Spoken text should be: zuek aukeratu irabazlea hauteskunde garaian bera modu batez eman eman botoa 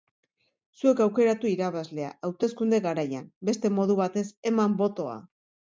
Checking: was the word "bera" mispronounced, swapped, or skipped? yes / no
yes